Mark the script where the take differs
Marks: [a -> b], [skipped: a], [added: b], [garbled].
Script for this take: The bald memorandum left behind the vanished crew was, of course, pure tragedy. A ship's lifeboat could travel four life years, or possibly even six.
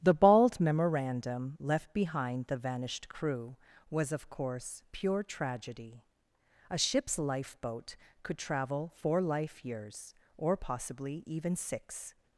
The bald memorandum left behind the vanished crew was, of course, pure tragedy. A ship's lifeboat could travel four life years, or possibly even six.